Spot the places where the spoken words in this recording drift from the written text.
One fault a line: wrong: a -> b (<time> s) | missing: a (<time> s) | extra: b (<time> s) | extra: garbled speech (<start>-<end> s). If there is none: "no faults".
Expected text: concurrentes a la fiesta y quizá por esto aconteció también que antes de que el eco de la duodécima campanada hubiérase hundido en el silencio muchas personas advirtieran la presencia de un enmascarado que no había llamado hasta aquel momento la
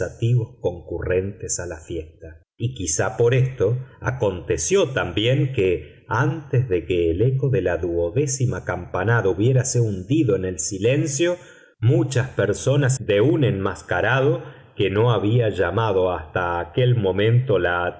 missing: advirtieran la presencia (13.0 s)